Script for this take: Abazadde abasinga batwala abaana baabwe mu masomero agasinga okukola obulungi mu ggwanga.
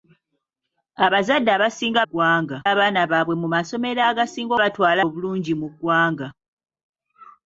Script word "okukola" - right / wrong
wrong